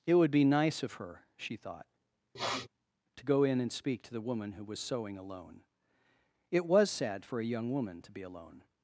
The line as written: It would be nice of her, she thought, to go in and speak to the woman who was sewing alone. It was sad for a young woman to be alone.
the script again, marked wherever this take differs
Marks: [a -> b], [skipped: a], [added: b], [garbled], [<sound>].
It would be nice of her, she thought, [sniff] to go in and speak to the woman who was sewing alone. It was sad for a young woman to be alone.